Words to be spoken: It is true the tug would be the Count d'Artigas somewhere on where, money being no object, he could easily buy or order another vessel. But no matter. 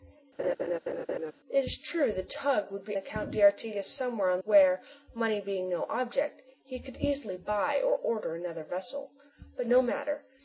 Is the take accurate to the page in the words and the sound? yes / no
no